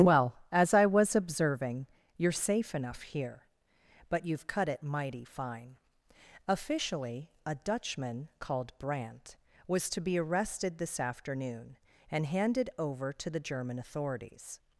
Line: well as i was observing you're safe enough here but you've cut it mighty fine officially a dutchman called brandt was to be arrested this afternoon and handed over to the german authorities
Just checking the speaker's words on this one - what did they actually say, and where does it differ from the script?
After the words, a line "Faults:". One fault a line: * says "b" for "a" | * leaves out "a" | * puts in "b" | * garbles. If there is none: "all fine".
well as i was observing you're safe enough here but you've cut it mighty fine officially a dutchman called brandt was to be arrested this afternoon and handed over to the german authorities
Faults:
all fine